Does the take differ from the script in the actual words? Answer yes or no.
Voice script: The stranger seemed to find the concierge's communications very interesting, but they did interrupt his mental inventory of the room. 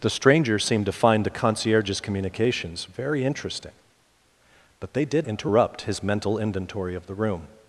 no